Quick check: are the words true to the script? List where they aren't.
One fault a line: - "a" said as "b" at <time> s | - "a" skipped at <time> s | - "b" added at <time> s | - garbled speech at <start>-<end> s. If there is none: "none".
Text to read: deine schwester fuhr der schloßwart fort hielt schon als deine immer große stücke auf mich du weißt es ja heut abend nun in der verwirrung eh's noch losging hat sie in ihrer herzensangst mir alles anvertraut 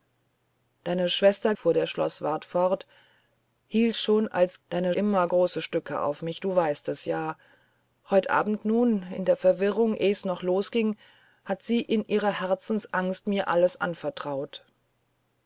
none